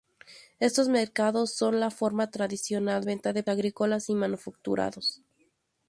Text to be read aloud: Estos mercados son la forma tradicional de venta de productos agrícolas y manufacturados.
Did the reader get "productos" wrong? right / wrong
wrong